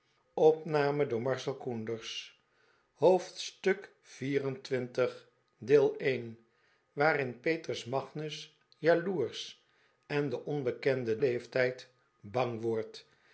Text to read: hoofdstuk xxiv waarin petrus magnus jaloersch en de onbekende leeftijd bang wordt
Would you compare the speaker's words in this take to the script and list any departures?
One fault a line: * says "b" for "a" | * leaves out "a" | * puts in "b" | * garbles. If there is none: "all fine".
all fine